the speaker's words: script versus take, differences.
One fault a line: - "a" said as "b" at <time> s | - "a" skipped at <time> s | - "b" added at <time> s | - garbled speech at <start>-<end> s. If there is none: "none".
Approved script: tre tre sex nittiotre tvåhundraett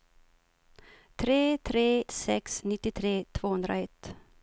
none